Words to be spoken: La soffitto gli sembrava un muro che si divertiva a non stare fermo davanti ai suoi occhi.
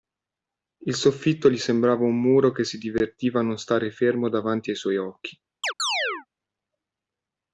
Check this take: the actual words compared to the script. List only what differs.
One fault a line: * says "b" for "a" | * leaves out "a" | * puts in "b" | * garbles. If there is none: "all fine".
* says "Il" for "La"